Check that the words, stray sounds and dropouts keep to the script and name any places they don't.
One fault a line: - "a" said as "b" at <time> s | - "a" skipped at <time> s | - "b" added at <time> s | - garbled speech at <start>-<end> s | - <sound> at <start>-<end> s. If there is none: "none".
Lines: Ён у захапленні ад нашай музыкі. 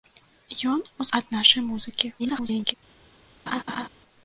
- "захапленні" skipped at 1.1 s
- garbled speech at 2.2-2.7 s
- laugh at 3.5-3.9 s